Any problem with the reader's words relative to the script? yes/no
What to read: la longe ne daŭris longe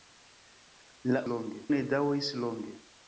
no